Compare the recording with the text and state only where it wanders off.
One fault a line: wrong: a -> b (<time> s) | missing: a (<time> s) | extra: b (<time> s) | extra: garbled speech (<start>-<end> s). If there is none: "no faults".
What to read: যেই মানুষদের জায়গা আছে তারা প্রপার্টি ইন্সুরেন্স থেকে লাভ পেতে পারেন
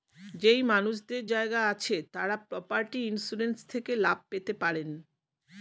no faults